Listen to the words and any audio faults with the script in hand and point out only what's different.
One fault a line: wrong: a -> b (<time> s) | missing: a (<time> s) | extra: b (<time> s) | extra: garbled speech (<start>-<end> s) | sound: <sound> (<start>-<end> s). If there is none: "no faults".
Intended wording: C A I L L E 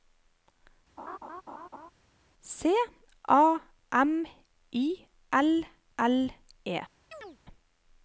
sound: laugh (1.0-1.9 s)
extra: M (3.9 s)
sound: chirp (7.1-7.4 s)